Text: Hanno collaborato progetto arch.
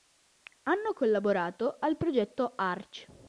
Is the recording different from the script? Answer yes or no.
yes